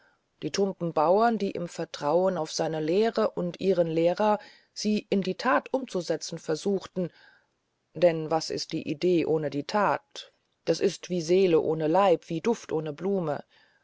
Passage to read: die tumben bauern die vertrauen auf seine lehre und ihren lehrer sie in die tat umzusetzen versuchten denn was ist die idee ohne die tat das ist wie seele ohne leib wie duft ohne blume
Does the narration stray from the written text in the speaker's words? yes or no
yes